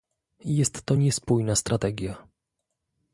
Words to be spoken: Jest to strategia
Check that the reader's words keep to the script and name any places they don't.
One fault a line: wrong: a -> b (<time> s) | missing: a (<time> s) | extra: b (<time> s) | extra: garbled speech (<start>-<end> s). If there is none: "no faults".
extra: niespójna (0.9 s)